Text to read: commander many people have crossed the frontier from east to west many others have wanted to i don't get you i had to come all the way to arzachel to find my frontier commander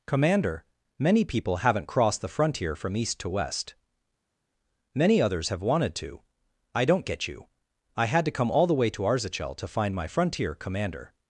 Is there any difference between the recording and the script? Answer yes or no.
yes